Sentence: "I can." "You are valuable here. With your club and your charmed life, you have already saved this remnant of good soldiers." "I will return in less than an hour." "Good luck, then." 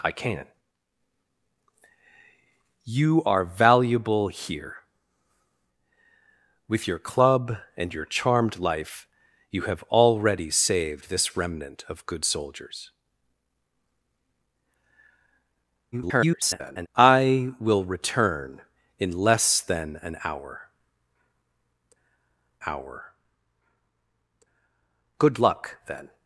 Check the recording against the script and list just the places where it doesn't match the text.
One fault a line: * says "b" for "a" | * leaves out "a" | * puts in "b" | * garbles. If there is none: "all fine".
* garbles
* puts in "hour"